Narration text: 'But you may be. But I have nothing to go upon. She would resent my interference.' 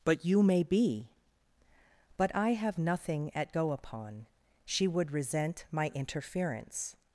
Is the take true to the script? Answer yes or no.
no